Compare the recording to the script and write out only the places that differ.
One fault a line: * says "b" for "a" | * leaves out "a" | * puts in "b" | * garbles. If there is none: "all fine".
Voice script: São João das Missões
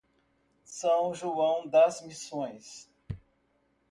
all fine